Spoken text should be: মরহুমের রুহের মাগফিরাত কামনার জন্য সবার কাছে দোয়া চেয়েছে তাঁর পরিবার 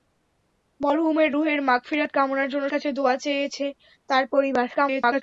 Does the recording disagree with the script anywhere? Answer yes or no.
yes